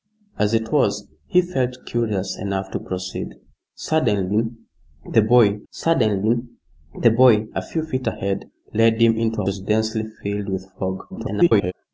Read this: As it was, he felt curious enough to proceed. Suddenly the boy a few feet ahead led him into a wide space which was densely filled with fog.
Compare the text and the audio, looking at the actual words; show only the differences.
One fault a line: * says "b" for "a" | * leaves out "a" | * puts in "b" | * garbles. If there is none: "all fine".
* puts in "suddenly the boy"
* leaves out "wide space which"
* garbles